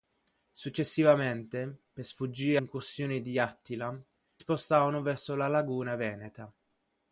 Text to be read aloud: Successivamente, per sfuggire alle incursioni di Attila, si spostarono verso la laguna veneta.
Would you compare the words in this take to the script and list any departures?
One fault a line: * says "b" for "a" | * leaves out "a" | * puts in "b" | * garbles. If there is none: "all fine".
* leaves out "alle"
* leaves out "si"